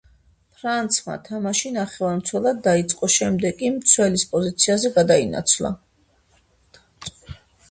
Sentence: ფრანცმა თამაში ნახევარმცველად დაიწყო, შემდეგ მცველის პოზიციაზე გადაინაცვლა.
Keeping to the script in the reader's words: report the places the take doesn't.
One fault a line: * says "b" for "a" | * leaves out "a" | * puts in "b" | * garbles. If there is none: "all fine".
* puts in "კი"